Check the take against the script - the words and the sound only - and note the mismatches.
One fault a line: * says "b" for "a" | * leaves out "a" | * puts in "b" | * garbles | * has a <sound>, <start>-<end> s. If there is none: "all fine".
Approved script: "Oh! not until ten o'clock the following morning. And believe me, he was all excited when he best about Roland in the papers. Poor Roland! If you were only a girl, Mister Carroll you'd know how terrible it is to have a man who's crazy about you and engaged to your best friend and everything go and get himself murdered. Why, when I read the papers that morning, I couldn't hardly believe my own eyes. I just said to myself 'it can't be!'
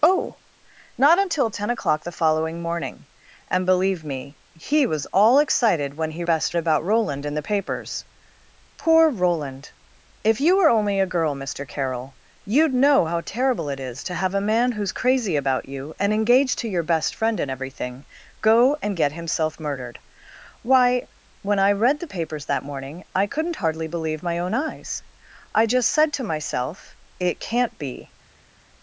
all fine